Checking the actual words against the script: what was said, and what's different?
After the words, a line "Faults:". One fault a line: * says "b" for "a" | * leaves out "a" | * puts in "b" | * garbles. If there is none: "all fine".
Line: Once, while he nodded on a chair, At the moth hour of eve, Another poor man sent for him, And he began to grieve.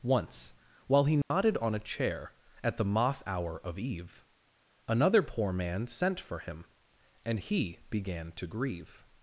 Once, while he nodded on a chair, At the moth hour of eve, Another poor man sent for him, And he began to grieve.
Faults:
all fine